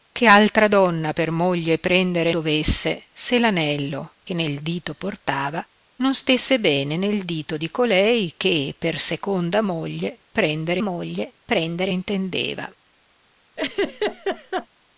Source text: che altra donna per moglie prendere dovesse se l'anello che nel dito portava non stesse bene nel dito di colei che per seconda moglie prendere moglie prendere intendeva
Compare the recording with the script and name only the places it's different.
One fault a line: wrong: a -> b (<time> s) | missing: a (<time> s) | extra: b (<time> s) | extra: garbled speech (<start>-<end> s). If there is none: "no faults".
no faults